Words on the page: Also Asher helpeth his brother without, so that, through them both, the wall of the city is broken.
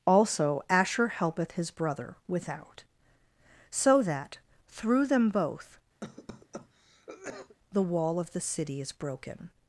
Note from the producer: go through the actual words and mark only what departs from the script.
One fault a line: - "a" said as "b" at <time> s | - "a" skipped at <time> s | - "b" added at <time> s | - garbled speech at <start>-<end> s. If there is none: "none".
none